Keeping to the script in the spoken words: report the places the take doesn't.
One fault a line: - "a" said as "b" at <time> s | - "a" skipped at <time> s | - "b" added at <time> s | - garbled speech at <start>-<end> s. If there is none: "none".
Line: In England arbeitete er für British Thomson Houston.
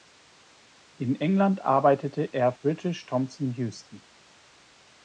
- "für" skipped at 2.5 s